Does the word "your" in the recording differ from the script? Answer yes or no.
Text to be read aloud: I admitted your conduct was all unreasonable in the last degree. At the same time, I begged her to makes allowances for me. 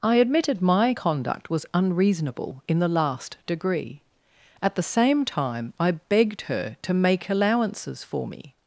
yes